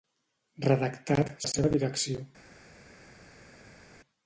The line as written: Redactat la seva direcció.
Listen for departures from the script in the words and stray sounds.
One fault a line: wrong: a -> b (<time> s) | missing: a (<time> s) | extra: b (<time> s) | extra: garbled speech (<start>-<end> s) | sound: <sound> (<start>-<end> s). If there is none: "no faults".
no faults